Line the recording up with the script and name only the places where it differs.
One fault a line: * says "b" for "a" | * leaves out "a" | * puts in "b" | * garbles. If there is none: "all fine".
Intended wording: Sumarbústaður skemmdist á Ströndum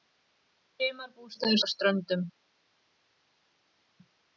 * leaves out "skemmdist"